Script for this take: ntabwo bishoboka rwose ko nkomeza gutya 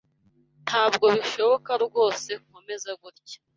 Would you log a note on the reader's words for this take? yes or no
yes